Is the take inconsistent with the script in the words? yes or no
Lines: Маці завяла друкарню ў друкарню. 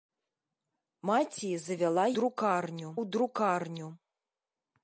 no